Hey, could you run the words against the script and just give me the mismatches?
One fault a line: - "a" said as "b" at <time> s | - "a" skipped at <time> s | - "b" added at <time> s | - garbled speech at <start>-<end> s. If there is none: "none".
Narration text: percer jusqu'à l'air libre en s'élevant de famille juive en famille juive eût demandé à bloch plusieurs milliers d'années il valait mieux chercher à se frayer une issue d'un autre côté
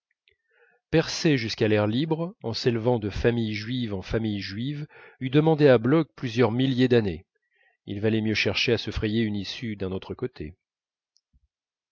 none